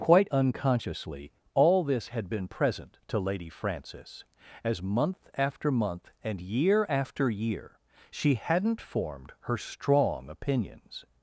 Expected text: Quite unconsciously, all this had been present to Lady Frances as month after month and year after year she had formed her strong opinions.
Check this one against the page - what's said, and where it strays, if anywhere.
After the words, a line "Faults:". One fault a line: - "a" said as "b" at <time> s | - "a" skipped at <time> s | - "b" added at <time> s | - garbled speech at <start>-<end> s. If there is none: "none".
Quite unconsciously, all this had been present to Lady Frances as month after month and year after year she hadn't formed her strong opinions.
Faults:
- "had" said as "hadn't" at 8.3 s